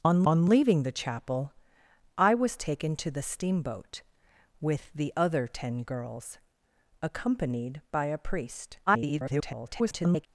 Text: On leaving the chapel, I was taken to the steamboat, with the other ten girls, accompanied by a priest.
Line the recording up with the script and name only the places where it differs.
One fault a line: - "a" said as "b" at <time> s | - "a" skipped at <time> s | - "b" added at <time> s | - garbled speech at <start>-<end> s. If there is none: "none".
- "on" added at 0.2 s
- garbled speech at 8.9-10.3 s